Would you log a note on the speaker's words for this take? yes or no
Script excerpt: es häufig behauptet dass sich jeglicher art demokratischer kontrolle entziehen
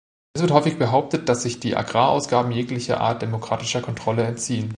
yes